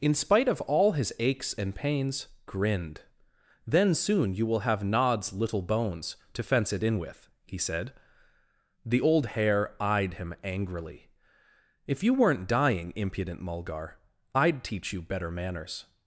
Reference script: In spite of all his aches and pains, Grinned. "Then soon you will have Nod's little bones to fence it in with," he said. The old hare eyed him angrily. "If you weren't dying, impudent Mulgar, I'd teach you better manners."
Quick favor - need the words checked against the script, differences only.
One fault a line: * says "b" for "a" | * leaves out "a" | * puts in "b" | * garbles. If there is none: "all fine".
all fine